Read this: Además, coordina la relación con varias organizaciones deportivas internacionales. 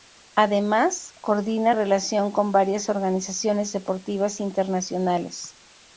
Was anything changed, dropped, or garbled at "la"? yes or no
yes